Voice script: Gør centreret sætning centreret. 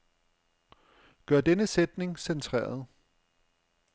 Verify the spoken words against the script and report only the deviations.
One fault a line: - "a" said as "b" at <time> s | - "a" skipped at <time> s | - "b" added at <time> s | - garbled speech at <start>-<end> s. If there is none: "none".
- "centreret" said as "denne" at 1.4 s